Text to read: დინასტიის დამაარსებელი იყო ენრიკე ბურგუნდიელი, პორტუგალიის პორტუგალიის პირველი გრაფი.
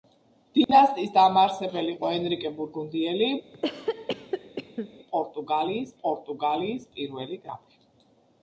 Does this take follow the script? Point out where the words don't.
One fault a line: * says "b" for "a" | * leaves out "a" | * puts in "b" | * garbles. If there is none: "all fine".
all fine